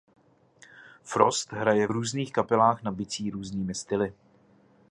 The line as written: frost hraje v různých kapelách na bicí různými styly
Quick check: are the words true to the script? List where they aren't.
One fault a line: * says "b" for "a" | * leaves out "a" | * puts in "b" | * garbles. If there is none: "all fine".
all fine